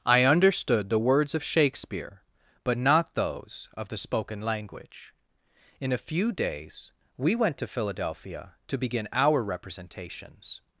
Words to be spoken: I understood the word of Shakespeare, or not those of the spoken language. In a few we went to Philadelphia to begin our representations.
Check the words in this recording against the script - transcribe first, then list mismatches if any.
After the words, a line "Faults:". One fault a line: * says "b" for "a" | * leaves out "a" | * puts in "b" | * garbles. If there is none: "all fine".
I understood the words of Shakespeare, but not those of the spoken language. In a few days we went to Philadelphia to begin our representations.
Faults:
* says "words" for "word"
* says "but" for "or"
* puts in "days"